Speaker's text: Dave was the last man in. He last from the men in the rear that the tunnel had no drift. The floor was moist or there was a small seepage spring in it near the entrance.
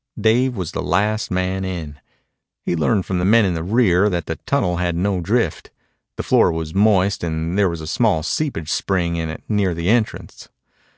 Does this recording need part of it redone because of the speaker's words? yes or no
yes